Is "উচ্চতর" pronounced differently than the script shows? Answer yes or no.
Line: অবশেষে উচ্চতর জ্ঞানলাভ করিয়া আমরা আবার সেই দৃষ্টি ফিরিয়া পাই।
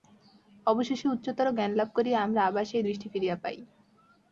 no